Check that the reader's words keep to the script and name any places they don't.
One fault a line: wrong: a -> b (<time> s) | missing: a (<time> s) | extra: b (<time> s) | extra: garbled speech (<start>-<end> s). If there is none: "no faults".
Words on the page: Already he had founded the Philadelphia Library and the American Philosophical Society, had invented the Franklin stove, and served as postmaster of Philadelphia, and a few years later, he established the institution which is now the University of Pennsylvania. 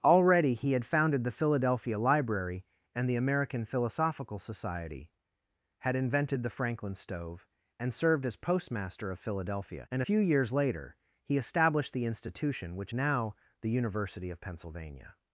missing: a (10.0 s)
missing: is (12.9 s)